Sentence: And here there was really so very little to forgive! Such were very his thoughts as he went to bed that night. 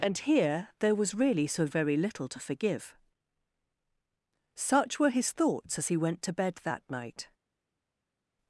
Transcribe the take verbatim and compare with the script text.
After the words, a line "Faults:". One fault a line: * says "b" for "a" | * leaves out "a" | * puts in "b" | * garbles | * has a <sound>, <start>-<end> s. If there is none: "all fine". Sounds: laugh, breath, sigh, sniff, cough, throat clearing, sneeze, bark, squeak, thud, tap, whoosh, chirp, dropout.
And here there was really so very little to forgive! Such were his thoughts as he went to bed that night.
Faults:
* leaves out "very"